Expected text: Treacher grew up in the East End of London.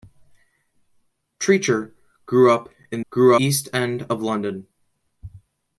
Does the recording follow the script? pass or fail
fail